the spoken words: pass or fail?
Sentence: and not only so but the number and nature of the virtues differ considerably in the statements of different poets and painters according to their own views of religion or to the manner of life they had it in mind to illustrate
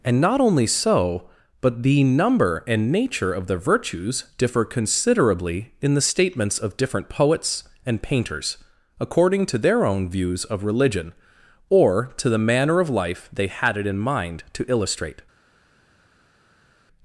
pass